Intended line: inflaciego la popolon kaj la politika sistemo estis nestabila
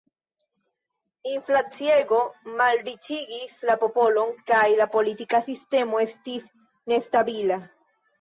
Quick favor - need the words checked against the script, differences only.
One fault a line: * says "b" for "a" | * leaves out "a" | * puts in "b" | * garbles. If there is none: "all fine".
* puts in "malriĉigis"